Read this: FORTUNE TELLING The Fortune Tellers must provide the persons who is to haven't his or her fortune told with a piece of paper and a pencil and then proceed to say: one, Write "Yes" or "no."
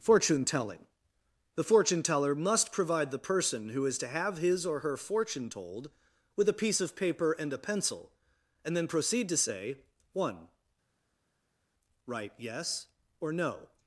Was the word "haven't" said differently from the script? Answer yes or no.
yes